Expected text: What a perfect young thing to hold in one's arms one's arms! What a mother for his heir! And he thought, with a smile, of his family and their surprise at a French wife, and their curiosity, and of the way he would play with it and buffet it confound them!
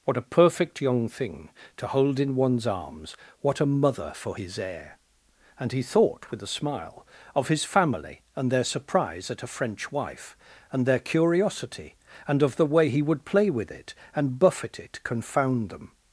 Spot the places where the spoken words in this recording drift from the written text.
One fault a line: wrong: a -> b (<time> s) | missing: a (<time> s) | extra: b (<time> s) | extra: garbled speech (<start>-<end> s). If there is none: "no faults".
missing: one's arms (3.1 s)